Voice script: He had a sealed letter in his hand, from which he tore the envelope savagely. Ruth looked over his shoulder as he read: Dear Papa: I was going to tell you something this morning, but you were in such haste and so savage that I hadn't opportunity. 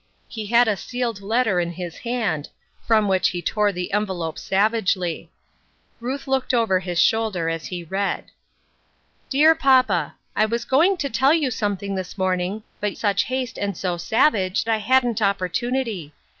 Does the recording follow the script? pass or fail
fail